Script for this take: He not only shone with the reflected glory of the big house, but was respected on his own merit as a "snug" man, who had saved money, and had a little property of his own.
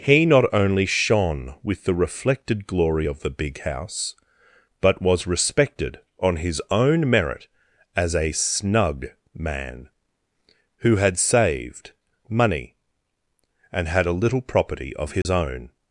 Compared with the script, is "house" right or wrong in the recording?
right